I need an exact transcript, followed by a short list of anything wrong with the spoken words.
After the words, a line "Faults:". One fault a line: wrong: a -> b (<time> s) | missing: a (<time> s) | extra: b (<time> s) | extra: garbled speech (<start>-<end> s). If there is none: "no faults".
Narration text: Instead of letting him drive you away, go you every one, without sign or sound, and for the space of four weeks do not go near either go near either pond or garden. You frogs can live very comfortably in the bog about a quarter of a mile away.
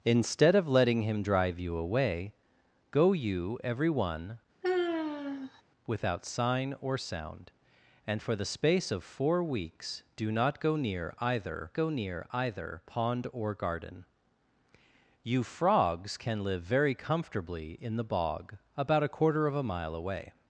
Instead of letting him drive you away, go you every one, without sign or sound, and for the space of four weeks do not go near either go near either pond or garden. You frogs can live very comfortably in the bog about a quarter of a mile away.
Faults:
no faults